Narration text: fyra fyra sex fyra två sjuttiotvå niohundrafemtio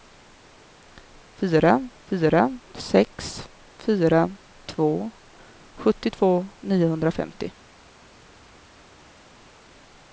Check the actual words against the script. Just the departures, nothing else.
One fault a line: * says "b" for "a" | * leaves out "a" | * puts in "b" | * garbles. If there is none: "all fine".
all fine